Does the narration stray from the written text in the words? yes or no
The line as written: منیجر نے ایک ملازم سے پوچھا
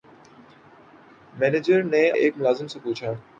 no